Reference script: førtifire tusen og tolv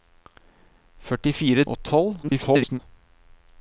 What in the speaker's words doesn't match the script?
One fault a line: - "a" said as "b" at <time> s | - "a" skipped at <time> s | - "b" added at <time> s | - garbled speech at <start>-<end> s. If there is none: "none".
- "tusen" skipped at 1.6 s
- garbled speech at 2.2-2.8 s